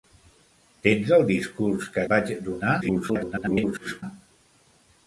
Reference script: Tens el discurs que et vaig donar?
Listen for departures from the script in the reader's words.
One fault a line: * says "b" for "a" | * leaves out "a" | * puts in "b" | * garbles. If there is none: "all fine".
* leaves out "et"
* garbles